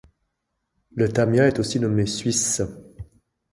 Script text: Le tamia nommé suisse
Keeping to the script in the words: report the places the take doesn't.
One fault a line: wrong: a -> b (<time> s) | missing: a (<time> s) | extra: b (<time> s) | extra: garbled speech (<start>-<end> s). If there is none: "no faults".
extra: est aussi (1.5 s)